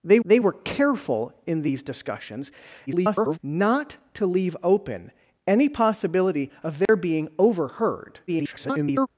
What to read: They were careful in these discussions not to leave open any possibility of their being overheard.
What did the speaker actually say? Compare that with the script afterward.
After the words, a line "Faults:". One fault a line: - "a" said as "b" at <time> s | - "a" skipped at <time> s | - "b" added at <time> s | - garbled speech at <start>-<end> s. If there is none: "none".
They they were careful in these discussions [garbled] not to leave open any possibility of their being overheard. [garbled]
Faults:
- "they" added at 0.2 s
- garbled speech at 2.9-3.4 s
- garbled speech at 8.3-9.1 s